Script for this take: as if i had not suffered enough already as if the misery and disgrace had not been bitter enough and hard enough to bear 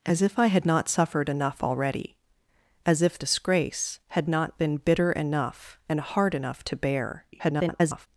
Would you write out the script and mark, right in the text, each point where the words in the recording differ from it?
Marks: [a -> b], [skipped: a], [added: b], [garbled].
as if i had not suffered enough already as if [skipped: the misery and] disgrace had not been bitter enough and hard enough to bear [garbled]